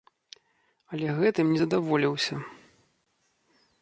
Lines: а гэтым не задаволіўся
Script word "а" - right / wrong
wrong